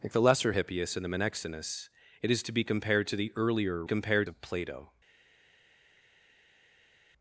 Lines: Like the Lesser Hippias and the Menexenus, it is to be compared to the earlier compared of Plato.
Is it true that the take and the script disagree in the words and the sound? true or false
false